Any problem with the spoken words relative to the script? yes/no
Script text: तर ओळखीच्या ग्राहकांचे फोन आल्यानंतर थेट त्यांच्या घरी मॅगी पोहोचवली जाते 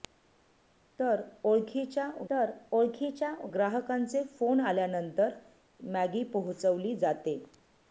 yes